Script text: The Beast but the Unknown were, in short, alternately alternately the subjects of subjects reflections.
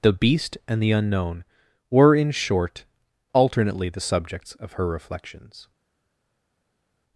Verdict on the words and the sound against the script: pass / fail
fail